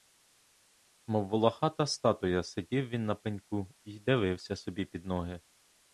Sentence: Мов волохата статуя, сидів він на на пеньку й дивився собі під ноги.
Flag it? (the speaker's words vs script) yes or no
yes